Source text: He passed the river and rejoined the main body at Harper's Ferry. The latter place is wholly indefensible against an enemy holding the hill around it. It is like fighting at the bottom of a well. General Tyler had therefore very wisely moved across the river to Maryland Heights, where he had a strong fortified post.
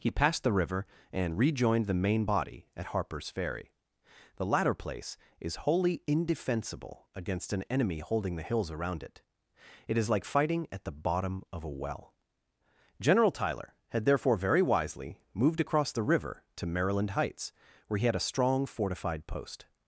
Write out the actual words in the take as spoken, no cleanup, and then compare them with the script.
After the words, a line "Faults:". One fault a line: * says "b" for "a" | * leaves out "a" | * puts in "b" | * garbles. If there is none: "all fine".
He passed the river and rejoined the main body at Harper's Ferry. The latter place is wholly indefensible against an enemy holding the hills around it. It is like fighting at the bottom of a well. General Tyler had therefore very wisely moved across the river to Maryland Heights, where he had a strong fortified post.
Faults:
* says "hills" for "hill"